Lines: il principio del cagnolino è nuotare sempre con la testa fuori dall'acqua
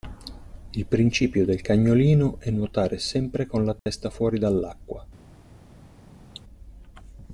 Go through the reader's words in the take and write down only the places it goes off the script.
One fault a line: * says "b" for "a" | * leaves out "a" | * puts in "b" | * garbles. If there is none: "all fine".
all fine